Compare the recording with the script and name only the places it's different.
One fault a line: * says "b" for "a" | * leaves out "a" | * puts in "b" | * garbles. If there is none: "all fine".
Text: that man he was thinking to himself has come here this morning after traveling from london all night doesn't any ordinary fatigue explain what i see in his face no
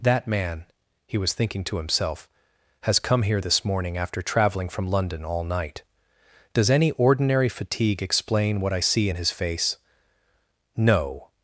* says "does" for "doesn't"